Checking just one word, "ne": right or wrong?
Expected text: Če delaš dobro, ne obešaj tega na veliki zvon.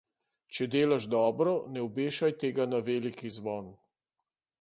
right